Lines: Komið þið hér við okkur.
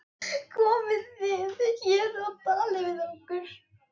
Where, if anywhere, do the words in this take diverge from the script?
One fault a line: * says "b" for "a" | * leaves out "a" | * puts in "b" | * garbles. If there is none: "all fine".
* puts in "og talið"